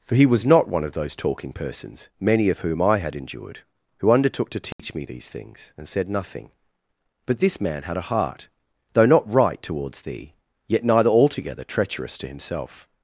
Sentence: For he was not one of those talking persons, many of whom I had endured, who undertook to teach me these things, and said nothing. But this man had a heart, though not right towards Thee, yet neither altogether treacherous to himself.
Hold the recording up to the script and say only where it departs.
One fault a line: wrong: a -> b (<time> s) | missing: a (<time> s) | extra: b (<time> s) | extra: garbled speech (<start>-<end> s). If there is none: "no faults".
no faults